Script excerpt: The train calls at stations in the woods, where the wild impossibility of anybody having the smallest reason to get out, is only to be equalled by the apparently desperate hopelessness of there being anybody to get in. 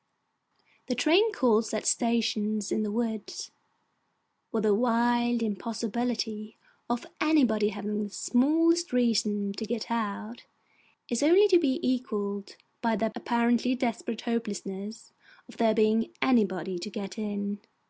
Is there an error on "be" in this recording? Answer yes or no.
no